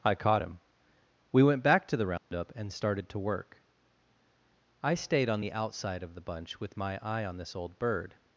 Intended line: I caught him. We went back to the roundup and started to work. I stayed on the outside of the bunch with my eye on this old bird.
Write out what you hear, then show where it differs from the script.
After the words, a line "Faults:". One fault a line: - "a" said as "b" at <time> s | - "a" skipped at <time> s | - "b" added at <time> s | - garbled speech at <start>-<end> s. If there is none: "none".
I caught him. We went back to the roundup and started to work. I stayed on the outside of the bunch with my eye on this old bird.
Faults:
none